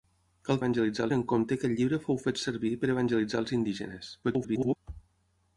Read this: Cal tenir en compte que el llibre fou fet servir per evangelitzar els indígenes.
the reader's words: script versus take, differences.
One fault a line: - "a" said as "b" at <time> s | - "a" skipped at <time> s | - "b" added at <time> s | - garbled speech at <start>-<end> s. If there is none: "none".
- "tenir" said as "evangelitzar" at 0.6 s
- garbled speech at 4.2-4.8 s